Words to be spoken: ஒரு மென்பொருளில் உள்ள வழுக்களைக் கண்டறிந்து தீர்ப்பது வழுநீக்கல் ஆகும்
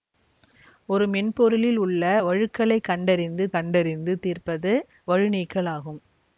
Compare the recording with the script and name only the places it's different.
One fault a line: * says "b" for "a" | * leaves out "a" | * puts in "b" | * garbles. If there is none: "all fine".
* puts in "கண்டறிந்து"